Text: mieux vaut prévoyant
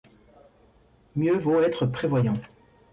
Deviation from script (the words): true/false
true